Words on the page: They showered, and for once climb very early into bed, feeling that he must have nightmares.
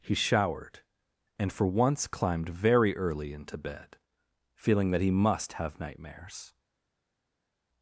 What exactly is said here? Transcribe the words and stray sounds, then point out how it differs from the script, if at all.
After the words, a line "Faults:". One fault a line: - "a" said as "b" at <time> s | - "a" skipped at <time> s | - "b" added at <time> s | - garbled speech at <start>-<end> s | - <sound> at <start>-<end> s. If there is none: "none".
He showered, and for once climbed very early into bed, feeling that he must have nightmares.
Faults:
- "They" said as "He" at 0.0 s
- "climb" said as "climbed" at 2.1 s